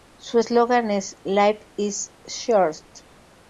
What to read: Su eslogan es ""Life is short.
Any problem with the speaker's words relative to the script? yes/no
no